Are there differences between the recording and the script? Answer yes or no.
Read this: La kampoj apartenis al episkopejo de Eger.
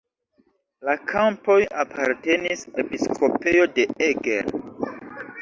yes